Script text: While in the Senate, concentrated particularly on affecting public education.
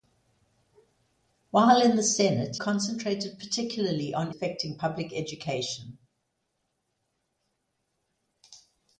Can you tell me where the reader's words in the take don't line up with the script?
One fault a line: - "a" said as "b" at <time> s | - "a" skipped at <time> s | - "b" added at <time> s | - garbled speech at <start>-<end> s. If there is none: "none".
none